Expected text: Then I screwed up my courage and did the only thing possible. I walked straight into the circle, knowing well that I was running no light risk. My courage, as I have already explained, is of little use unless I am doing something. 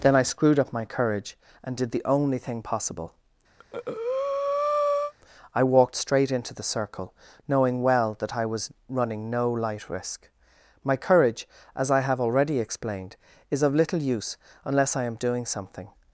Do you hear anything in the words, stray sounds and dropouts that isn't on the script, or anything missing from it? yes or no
yes